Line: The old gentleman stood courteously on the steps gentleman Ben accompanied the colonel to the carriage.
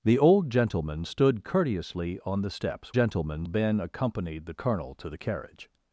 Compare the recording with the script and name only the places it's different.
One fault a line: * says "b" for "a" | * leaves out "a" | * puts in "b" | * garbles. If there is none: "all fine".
all fine